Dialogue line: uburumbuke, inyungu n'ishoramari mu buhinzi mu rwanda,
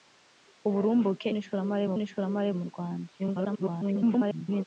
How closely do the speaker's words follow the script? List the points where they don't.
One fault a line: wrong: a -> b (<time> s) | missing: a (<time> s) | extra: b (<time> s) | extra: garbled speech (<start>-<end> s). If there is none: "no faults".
missing: inyungu (1.3 s)
wrong: buhinzi -> n'ishoramari (2.0 s)
extra: garbled speech (3.2-4.6 s)